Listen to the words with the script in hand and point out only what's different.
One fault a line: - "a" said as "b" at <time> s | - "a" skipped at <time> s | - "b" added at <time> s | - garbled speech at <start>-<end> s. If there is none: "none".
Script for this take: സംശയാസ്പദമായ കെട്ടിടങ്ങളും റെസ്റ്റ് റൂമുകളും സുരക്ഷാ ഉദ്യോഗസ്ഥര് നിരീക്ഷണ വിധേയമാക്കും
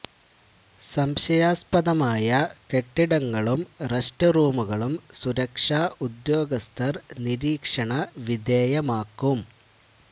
none